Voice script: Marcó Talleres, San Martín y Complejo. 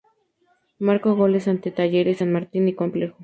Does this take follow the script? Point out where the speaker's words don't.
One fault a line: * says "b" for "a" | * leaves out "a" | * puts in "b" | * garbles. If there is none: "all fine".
* puts in "goles ante"